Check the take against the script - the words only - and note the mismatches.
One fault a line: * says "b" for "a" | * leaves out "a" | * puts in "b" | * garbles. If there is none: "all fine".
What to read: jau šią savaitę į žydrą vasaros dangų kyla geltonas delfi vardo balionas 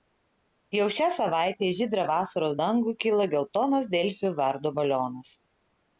all fine